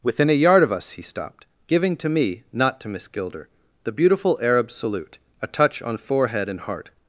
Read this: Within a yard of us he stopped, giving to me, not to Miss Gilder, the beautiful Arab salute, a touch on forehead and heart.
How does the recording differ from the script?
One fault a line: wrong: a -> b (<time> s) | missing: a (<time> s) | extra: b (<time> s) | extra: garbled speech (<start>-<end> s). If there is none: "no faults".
no faults